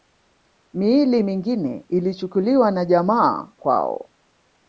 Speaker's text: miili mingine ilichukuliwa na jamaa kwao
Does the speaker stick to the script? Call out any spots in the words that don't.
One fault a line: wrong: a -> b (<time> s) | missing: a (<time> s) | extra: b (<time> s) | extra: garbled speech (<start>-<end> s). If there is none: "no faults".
no faults